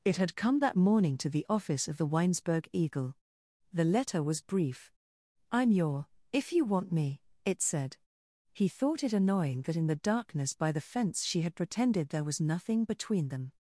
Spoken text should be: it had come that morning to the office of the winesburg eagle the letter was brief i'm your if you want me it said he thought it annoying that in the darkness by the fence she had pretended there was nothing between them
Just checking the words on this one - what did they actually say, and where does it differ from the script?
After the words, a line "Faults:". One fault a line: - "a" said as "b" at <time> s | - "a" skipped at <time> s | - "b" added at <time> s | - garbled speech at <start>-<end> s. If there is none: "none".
it had come that morning to the office of the winesburg eagle the letter was brief i'm your if you want me it said he thought it annoying that in the darkness by the fence she had pretended there was nothing between them
Faults:
none